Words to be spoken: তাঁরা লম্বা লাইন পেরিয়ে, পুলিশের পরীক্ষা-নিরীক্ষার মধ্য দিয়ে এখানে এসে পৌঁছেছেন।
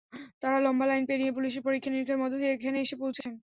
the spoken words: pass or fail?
pass